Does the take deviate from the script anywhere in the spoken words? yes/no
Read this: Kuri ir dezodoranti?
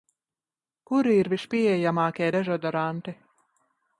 yes